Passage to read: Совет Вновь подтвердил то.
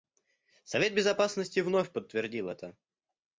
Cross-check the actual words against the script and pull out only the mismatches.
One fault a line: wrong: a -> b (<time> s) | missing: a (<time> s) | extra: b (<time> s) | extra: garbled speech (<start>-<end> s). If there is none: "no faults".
extra: Безопасности (0.9 s)
wrong: то -> это (2.5 s)